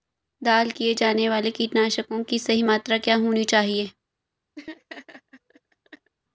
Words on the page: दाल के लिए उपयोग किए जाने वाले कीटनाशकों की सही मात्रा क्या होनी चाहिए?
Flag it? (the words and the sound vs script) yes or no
yes